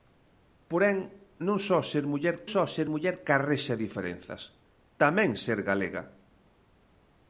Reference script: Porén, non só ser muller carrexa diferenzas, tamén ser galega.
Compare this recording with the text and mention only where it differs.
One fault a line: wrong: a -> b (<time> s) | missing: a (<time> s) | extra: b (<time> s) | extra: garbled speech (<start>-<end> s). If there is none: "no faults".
extra: só ser muller (2.5 s)